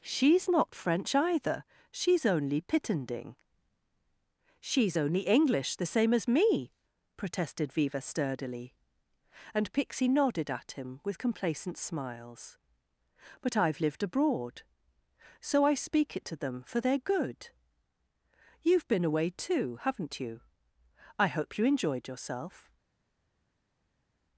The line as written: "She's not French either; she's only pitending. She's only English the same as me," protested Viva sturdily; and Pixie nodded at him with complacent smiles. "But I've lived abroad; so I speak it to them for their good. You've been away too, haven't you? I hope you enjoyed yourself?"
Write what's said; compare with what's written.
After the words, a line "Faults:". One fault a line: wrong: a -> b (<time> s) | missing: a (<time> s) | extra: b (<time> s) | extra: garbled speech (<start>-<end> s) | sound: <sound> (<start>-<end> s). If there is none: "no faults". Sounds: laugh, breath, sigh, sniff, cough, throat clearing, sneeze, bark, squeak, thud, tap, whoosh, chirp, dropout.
"She's not French either; she's only pitending. She's only English the same as me," protested Viva sturdily; and Pixie nodded at him with complacent smiles. "But I've lived abroad; so I speak it to them for their good. You've been away too, haven't you? I hope you enjoyed yourself?"
Faults:
no faults